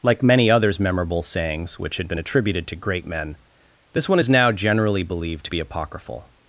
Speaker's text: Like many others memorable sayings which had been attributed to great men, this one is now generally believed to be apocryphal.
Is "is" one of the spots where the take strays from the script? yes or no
no